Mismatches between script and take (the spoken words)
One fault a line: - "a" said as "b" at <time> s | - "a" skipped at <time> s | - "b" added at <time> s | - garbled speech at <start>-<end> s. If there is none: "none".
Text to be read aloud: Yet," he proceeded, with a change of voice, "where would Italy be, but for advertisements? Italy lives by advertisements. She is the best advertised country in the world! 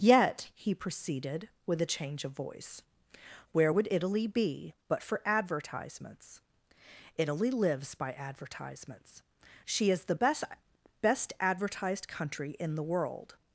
- "best" added at 11.0 s